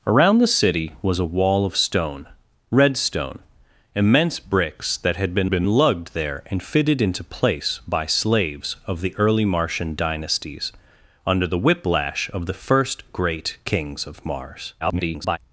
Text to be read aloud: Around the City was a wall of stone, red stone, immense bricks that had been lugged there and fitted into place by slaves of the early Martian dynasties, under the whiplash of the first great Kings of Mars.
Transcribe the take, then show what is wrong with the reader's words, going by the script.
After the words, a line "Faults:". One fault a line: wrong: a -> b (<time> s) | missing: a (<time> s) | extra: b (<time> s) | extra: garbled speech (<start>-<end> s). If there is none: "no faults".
Around the City was a wall of stone, red stone, immense bricks that had been been lugged there and fitted into place by slaves of the early Martian dynasties, under the whiplash of the first great Kings of Mars. [garbled]
Faults:
extra: been (5.5 s)
extra: garbled speech (14.8-15.4 s)